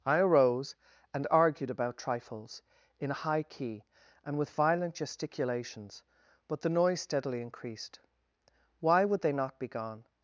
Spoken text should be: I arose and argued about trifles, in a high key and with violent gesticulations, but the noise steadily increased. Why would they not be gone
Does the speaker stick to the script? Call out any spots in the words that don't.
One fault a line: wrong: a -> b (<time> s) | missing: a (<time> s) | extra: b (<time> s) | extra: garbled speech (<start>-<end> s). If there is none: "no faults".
no faults